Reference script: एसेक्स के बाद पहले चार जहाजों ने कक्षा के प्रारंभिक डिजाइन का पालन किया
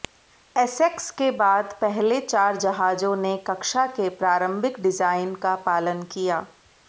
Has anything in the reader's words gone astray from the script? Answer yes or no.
no